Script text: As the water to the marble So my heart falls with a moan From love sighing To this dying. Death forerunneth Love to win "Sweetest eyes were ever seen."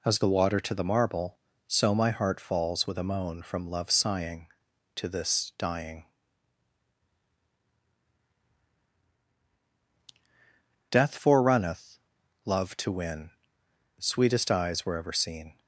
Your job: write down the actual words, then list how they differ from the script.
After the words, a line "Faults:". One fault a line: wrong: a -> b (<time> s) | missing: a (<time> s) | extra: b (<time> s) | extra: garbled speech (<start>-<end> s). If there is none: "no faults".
As the water to the marble So my heart falls with a moan From love sighing To this dying. Death forerunneth Love to win "Sweetest eyes were ever seen."
Faults:
no faults